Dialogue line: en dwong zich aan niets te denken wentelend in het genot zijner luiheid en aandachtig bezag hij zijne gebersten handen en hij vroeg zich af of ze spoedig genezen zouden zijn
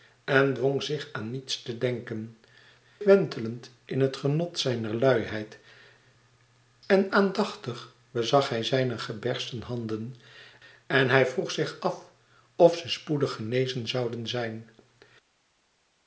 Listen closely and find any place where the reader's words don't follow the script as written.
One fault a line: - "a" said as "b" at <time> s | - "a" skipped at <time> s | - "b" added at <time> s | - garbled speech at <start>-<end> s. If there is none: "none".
none